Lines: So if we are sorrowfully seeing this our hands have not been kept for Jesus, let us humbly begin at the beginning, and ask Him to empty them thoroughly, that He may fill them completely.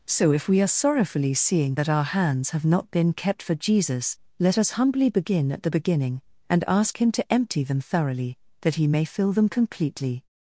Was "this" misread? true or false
true